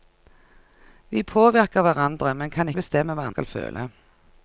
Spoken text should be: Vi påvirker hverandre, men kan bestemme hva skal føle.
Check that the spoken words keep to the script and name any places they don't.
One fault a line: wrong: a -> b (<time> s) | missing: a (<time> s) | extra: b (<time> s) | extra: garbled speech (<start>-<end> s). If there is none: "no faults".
no faults